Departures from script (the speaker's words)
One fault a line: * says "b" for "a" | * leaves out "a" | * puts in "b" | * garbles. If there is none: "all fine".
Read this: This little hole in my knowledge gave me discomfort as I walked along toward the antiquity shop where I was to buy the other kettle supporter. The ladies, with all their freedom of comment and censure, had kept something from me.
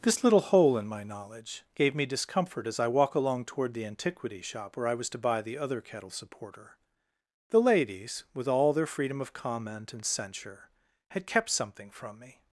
* says "walk" for "walked"